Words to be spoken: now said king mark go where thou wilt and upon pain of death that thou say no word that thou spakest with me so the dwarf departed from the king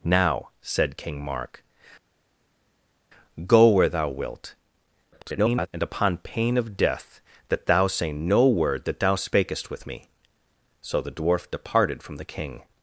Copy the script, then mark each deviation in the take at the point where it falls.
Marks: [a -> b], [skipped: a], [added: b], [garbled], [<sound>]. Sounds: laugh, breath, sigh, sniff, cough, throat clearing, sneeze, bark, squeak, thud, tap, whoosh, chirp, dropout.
now said king mark go where thou wilt [garbled] and upon pain of death that thou say no word that thou spakest with me so the dwarf departed from the king